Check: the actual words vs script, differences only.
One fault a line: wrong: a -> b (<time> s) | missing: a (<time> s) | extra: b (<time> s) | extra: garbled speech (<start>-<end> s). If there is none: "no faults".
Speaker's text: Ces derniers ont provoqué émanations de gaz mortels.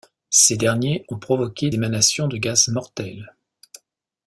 no faults